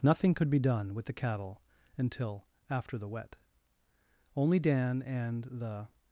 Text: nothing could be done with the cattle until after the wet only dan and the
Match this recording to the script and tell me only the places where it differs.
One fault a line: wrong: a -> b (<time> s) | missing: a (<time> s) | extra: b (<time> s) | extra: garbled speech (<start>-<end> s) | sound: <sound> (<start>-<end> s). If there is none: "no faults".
no faults